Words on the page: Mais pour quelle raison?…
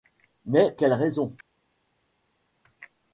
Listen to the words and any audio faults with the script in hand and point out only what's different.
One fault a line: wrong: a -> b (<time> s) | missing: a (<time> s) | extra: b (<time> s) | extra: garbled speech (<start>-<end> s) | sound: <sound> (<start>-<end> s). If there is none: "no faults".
missing: pour (0.7 s)